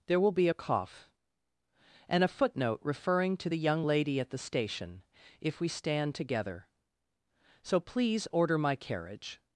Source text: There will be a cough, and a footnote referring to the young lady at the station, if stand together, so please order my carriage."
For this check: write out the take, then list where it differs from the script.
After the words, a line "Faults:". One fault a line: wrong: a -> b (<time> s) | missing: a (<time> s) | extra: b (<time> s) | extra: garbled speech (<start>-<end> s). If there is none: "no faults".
There will be a cough, and a footnote referring to the young lady at the station, if we stand together, so please order my carriage."
Faults:
extra: we (5.6 s)